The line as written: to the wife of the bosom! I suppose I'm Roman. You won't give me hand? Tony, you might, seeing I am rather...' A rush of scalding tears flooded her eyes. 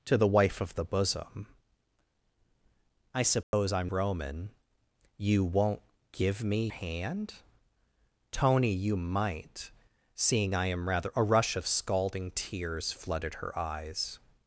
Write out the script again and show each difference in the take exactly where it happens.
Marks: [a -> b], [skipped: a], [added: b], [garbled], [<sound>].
to the wife of the bosom! I suppose [dropout] I'm Roman. You won't give me hand? Tony, you might, seeing I am rather...' A rush of scalding tears flooded her eyes.